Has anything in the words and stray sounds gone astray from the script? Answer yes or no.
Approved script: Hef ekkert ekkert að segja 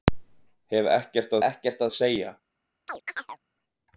yes